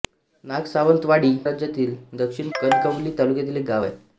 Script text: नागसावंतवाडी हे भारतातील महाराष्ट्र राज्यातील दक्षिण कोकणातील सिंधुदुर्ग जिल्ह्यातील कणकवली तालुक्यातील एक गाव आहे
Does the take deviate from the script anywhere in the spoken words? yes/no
yes